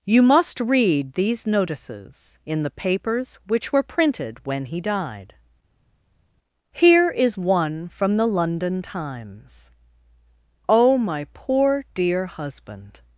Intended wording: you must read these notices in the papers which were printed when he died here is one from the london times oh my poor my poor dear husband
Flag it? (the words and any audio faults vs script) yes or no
yes